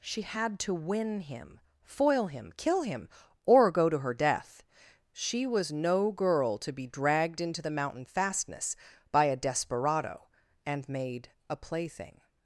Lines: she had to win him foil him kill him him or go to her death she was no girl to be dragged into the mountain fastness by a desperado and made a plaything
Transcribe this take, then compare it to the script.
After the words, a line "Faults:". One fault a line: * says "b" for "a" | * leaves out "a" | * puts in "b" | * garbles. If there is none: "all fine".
she had to win him foil him kill him or go to her death she was no girl to be dragged into the mountain fastness by a desperado and made a plaything
Faults:
* leaves out "him"